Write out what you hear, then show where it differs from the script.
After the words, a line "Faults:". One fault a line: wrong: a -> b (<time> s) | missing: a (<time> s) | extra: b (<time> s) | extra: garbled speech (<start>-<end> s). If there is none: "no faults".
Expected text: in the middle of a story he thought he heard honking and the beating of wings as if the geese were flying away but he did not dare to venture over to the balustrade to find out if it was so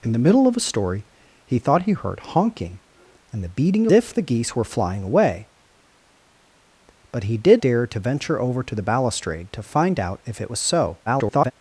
in the middle of a story he thought he heard honking and the beating if the geese were flying away but he did dare to venture over to the balustrade to find out if it was so [garbled]
Faults:
missing: of wings as (3.9 s)
missing: not (7.6 s)
extra: garbled speech (11.1-11.5 s)